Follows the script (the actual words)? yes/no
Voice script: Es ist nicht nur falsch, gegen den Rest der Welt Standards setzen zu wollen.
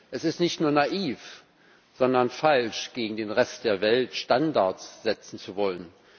no